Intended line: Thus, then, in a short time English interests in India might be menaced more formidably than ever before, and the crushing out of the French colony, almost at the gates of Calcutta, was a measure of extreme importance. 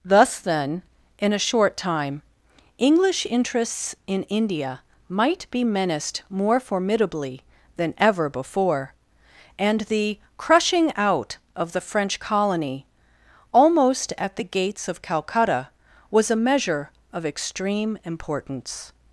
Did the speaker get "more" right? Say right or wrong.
right